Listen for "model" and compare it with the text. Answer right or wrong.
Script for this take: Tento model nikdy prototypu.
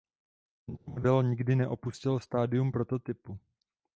right